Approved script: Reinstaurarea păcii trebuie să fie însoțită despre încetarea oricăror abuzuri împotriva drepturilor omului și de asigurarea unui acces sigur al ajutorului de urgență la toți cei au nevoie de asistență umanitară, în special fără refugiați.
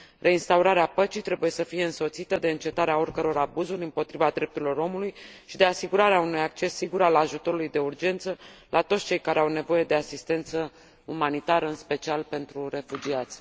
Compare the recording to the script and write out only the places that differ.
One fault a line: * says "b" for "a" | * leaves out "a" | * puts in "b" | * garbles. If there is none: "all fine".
* says "de" for "despre"
* puts in "care"
* says "pentru" for "fără"